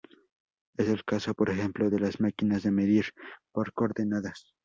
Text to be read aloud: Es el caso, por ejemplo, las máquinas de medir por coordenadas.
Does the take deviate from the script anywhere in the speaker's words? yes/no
yes